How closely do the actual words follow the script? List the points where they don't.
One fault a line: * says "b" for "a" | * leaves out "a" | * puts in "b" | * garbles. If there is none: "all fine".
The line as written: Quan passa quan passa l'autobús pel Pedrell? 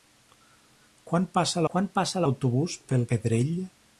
all fine